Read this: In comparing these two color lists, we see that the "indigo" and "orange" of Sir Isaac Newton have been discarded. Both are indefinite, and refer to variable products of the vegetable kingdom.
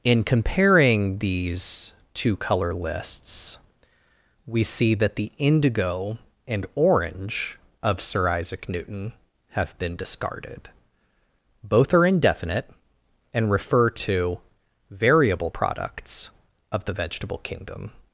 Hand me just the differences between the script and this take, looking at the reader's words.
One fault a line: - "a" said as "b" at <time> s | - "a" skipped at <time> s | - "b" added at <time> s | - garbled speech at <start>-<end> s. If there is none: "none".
none